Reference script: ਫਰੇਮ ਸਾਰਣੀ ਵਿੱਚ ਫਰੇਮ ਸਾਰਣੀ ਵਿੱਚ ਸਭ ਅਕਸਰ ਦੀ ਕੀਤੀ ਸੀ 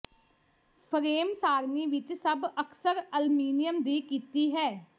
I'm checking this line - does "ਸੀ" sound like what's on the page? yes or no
no